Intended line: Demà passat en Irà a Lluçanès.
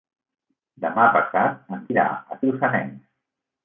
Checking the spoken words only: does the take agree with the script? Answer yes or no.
yes